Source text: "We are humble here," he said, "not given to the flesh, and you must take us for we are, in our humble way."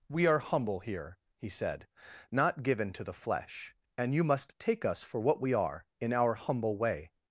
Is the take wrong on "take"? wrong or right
right